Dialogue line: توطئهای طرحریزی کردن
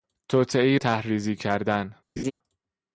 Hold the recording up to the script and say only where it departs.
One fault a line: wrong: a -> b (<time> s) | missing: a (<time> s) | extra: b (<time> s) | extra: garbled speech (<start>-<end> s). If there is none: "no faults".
no faults